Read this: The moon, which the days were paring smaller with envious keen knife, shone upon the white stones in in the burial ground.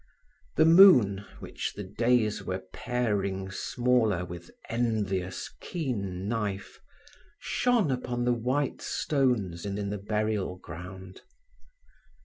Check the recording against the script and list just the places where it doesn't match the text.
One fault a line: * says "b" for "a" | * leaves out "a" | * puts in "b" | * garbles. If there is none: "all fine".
all fine